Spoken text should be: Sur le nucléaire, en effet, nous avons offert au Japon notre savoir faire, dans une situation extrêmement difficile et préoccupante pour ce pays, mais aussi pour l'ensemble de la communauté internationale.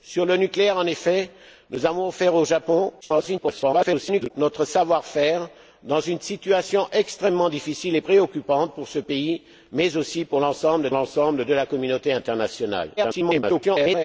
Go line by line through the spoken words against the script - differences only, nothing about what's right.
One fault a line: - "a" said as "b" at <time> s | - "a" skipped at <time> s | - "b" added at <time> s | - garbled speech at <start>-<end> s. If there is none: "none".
- garbled speech at 3.0-4.3 s
- "l'ensemble" added at 10.9 s
- garbled speech at 13.0-14.0 s